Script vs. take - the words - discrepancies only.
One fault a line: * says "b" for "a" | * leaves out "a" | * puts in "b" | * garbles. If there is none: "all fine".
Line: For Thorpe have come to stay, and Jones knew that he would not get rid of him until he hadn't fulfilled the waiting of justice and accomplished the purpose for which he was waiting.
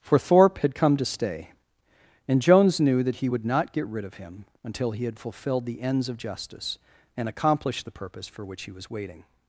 * says "had" for "have"
* says "had" for "hadn't"
* says "ends" for "waiting"